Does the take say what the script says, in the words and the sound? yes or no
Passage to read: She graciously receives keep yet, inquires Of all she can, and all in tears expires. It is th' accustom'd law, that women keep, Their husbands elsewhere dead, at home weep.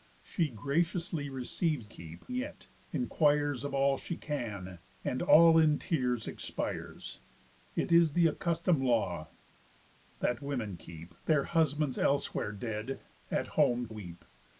yes